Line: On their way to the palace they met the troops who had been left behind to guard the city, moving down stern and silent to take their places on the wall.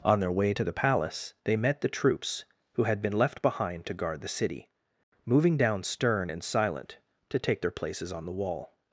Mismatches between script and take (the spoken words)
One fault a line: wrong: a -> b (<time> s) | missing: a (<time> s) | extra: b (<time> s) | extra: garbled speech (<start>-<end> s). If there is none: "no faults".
no faults